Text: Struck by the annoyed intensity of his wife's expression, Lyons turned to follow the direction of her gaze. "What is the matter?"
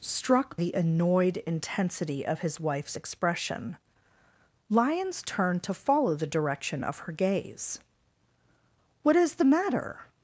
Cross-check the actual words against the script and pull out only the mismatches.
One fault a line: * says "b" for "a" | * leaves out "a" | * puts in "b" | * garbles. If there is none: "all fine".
* leaves out "by"